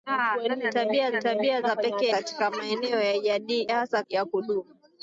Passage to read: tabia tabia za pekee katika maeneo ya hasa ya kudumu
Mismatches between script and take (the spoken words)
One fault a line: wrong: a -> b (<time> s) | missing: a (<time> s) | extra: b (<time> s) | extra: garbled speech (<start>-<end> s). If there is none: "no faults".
no faults